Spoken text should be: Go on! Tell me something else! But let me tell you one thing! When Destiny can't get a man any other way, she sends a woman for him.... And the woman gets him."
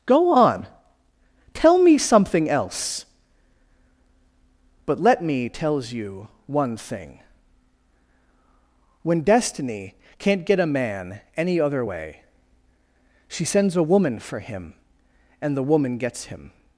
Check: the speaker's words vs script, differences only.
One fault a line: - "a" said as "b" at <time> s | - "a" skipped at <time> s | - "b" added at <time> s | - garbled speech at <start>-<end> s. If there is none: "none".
- "tell" said as "tells" at 5.5 s